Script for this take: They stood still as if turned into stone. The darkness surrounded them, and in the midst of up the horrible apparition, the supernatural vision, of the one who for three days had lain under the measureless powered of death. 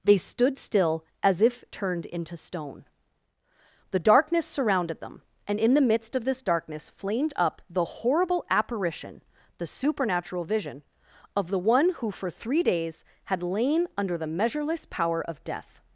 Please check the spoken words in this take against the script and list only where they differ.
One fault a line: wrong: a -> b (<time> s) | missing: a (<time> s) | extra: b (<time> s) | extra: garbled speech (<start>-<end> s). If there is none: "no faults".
extra: this darkness flamed (6.2 s)
wrong: powered -> power (14.8 s)